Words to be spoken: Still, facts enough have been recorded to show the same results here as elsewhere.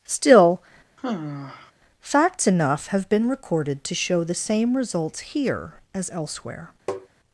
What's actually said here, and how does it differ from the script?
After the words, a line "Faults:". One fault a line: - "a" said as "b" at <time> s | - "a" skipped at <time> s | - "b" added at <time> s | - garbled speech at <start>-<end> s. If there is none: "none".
Still, facts enough have been recorded to show the same results here as elsewhere.
Faults:
none